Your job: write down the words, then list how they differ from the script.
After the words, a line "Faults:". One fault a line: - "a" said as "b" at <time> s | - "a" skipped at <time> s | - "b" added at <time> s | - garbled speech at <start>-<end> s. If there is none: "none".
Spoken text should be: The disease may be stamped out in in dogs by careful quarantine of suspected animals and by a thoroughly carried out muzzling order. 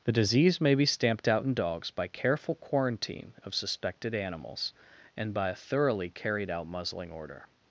The disease may be stamped out in dogs by careful quarantine of suspected animals and by a thoroughly carried out muzzling order.
Faults:
- "in" skipped at 1.5 s